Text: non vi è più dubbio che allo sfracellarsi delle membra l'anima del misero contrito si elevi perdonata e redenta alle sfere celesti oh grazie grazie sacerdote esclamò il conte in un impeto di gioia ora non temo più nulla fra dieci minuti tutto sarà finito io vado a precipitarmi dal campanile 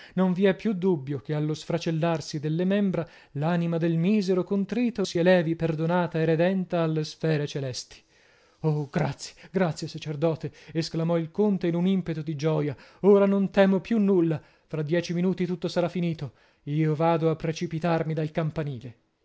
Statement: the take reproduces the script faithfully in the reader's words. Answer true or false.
true